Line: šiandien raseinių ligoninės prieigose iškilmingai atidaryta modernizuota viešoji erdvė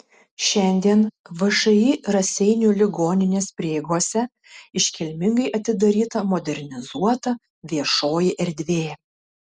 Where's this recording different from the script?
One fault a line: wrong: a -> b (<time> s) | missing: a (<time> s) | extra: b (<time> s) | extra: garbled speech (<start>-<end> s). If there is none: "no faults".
extra: všį (1.4 s)